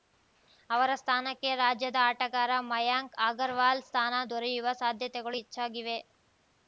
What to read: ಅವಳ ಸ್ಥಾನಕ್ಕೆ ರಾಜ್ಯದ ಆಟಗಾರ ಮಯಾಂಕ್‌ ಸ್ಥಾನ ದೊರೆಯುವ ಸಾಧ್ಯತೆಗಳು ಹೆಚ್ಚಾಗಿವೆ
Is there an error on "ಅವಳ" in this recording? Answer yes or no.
yes